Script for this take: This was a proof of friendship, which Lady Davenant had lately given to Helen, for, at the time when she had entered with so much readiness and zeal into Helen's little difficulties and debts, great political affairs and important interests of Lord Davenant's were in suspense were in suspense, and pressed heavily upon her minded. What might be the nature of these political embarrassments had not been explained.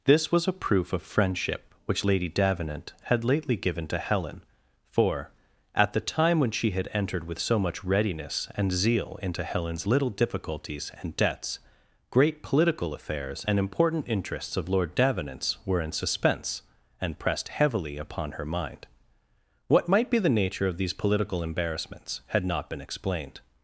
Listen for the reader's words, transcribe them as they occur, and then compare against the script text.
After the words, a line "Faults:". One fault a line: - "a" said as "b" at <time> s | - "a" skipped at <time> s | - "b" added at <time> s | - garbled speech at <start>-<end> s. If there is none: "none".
This was a proof of friendship, which Lady Davenant had lately given to Helen, for, at the time when she had entered with so much readiness and zeal into Helen's little difficulties and debts, great political affairs and important interests of Lord Davenant's were in suspense, and pressed heavily upon her mind. What might be the nature of these political embarrassments had not been explained.
Faults:
- "were in suspense" skipped at 16.6 s
- "minded" said as "mind" at 18.4 s